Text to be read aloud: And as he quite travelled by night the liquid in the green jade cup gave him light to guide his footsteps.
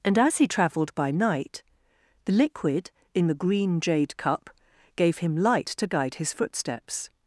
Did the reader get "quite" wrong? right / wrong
wrong